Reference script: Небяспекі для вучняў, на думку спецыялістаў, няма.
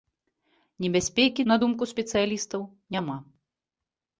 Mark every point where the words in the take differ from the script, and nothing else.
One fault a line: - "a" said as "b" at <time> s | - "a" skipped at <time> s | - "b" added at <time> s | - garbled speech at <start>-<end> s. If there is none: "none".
- "для вучняў" skipped at 1.4 s